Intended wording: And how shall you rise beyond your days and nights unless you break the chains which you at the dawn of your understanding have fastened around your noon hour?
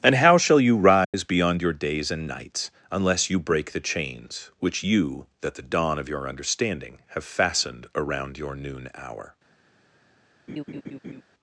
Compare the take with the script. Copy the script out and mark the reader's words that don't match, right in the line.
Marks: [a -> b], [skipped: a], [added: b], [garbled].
And how shall you rise beyond your days and nights unless you break the chains which you [at -> that] the dawn of your understanding have fastened around your noon hour?